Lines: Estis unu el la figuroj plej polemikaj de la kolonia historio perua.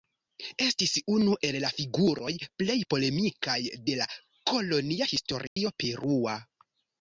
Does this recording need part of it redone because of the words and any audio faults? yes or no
yes